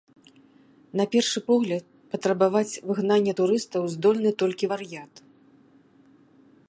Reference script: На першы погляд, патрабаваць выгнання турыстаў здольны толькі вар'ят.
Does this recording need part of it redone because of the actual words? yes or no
no